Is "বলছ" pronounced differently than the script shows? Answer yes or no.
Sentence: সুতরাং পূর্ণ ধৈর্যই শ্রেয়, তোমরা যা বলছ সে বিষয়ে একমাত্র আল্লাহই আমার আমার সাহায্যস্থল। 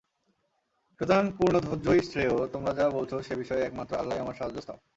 no